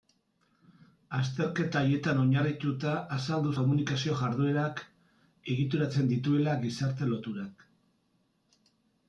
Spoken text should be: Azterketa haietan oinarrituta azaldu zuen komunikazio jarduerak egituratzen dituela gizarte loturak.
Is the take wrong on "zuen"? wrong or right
wrong